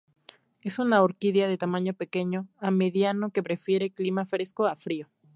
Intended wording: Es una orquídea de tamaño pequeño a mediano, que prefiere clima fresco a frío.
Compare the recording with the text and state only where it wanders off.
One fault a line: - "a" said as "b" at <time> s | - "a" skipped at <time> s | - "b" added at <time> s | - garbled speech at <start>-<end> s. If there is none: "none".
none